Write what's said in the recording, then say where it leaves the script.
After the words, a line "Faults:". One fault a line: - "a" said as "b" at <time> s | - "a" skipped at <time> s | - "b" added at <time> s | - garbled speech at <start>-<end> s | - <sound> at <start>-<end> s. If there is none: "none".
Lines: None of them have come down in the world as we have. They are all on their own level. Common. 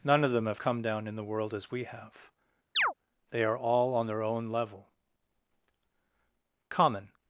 None of them have come down in the world as we have. They are all on their own level. Common.
Faults:
- chirp at 2.7-2.9 s